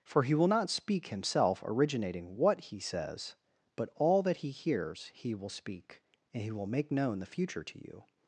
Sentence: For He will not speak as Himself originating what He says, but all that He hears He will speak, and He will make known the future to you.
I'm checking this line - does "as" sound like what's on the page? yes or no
no